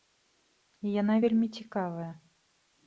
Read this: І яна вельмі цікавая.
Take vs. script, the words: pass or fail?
pass